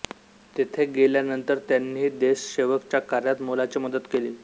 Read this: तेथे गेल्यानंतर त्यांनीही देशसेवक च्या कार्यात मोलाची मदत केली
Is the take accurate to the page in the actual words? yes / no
yes